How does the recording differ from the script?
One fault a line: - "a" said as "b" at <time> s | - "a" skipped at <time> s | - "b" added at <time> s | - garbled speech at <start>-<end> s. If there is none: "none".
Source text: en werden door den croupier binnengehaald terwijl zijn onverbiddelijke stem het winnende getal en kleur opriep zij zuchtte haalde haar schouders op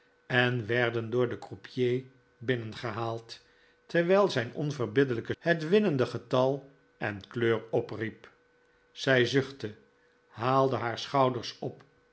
- "stem" skipped at 5.3 s